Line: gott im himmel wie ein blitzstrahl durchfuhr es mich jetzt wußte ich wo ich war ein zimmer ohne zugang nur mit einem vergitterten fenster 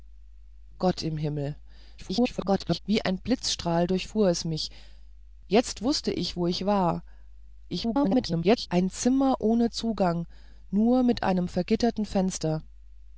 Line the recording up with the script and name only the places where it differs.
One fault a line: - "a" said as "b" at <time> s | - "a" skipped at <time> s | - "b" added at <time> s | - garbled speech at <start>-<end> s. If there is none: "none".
- garbled speech at 2.0-2.8 s
- garbled speech at 7.7-8.7 s